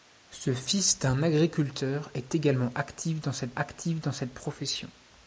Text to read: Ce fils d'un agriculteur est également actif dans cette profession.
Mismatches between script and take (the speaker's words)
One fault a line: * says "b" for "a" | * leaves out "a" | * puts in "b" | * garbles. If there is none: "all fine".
* puts in "actif dans cette"